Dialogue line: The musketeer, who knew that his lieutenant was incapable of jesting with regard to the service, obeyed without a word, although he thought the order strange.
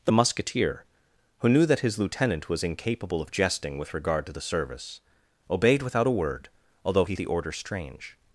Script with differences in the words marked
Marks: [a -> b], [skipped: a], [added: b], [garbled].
The musketeer, who knew that his lieutenant was incapable of jesting with regard to the service, obeyed without a word, although he [skipped: thought] the order strange.